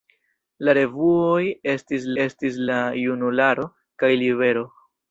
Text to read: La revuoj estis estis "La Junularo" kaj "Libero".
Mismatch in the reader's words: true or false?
false